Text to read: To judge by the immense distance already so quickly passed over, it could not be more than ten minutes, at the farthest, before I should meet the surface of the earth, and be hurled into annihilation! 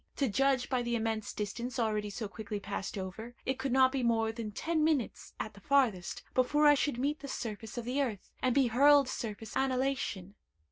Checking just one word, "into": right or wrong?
wrong